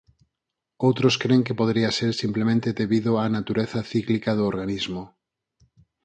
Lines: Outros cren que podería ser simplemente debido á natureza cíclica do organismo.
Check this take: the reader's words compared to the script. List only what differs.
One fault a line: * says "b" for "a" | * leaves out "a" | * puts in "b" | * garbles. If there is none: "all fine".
all fine